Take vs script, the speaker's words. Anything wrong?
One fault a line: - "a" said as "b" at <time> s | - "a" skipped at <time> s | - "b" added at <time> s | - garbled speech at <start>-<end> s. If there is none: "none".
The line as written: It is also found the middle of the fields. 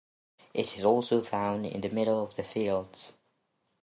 - "in" added at 1.7 s